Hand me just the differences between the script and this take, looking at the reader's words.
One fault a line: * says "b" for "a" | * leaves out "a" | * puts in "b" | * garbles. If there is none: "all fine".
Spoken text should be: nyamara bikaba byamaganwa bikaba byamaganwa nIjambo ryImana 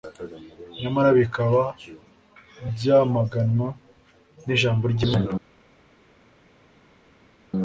* leaves out "bikaba byamaganwa"